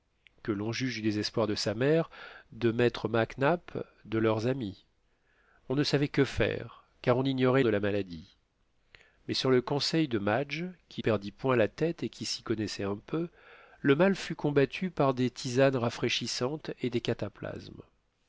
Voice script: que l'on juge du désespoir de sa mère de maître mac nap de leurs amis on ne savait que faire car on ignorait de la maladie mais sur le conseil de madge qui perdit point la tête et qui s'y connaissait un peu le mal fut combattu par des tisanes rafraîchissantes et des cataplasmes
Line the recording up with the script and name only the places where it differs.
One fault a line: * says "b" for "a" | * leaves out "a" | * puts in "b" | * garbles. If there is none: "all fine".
all fine